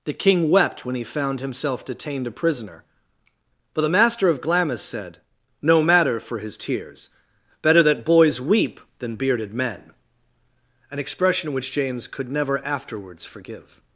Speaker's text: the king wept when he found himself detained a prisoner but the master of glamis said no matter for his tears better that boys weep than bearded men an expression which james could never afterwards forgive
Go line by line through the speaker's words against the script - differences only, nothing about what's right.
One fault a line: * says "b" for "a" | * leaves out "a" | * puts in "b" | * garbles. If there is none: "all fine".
all fine